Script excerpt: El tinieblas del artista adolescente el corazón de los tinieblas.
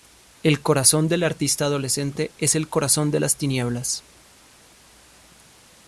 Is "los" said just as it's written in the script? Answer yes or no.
no